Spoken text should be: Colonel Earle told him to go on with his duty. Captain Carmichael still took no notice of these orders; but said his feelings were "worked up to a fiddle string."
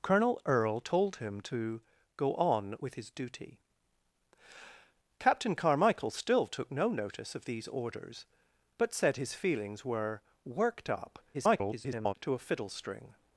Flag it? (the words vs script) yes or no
yes